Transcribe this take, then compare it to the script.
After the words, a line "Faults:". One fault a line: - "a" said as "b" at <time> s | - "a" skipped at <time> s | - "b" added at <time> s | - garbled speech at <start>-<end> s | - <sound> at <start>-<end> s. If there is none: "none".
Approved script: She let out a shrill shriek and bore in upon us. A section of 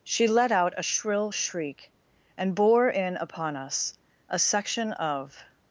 She let out a shrill shriek and bore in upon us. A section of
Faults:
none